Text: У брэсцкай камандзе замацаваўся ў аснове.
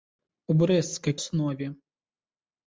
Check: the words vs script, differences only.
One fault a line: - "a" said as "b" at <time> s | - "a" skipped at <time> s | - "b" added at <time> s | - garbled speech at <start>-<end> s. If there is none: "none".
- "камандзе замацаваўся ў" skipped at 1.1 s